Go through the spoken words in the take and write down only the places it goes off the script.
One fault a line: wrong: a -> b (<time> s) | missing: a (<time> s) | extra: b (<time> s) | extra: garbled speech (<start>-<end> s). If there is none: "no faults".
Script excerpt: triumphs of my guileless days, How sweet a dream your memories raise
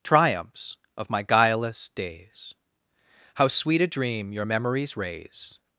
no faults